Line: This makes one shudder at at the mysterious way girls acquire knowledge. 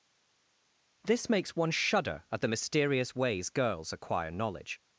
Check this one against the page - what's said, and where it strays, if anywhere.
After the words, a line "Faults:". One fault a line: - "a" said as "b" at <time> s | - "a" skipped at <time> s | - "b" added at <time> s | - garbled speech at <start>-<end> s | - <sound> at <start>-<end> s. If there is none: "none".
This makes one shudder at the mysterious ways girls acquire knowledge.
Faults:
- "at" skipped at 2.4 s
- "way" said as "ways" at 3.2 s